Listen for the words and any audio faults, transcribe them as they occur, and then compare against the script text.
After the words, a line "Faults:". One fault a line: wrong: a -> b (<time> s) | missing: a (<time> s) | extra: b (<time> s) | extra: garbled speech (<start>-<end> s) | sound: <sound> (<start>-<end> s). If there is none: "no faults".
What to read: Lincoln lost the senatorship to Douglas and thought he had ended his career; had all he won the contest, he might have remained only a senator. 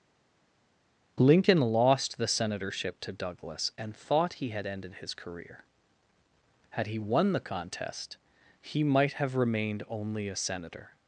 Lincoln lost the senatorship to Douglas and thought he had ended his career; had he won the contest, he might have remained only a senator.
Faults:
missing: all (6.9 s)